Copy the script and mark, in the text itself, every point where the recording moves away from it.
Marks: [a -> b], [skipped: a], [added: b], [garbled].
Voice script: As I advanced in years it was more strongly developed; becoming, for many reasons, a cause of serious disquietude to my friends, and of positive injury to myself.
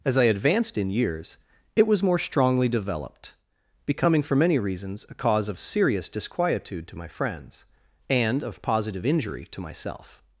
As I advanced in years it was more strongly developed; becoming, for many reasons, a cause of serious disquietude to my friends, and of positive injury to myself.